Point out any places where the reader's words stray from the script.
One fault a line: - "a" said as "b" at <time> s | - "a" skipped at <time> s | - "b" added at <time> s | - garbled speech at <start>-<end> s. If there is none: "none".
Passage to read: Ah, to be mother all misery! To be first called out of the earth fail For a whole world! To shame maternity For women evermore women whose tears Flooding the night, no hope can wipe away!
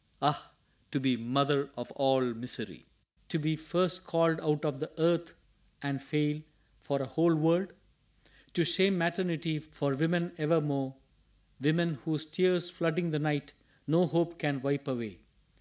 - "of" added at 1.8 s
- "and" added at 5.8 s